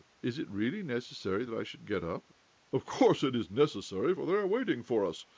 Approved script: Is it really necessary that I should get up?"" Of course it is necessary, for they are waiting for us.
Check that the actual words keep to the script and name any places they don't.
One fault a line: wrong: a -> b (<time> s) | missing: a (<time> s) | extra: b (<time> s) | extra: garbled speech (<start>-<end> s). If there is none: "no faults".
no faults